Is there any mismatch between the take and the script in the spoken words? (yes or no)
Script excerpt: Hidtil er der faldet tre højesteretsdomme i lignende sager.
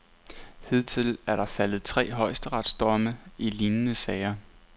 no